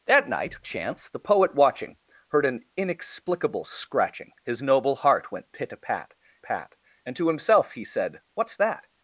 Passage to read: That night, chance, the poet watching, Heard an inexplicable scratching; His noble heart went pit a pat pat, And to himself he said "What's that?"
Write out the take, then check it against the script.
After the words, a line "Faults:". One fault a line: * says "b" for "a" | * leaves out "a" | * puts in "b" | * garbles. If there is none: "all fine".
That night, chance, the poet watching, Heard an inexplicable scratching; His noble heart went pit a pat pat, And to himself he said "What's that?"
Faults:
all fine